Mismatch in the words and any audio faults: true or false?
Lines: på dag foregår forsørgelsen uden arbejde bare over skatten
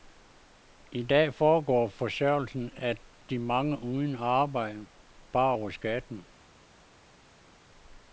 true